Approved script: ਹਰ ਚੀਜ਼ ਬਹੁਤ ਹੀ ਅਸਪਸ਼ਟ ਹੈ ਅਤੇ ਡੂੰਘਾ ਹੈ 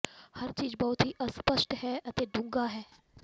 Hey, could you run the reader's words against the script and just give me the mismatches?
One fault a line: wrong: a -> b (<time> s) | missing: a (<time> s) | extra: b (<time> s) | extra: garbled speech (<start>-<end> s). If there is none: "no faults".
no faults